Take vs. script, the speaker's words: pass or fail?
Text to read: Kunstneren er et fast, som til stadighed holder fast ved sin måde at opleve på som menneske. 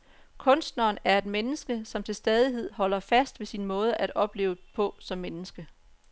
fail